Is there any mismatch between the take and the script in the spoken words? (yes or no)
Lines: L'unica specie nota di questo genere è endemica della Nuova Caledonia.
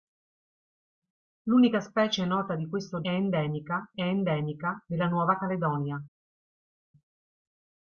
yes